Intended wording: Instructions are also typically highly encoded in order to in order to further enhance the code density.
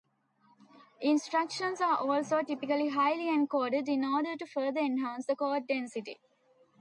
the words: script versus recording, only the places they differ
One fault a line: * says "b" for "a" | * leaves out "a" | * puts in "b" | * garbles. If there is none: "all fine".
* leaves out "in order to"